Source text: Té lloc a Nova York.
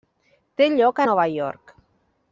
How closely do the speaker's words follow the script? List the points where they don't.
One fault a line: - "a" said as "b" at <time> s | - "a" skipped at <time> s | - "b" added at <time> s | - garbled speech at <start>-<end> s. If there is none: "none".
none